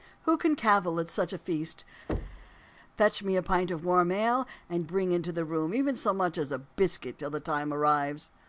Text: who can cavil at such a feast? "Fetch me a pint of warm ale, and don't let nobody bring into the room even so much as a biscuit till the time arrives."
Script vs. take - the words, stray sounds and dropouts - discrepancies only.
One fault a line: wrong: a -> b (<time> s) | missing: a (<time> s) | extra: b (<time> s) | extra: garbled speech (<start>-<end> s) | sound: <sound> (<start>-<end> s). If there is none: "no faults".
sound: thud (2.1-2.6 s)
missing: don't let nobody (4.9 s)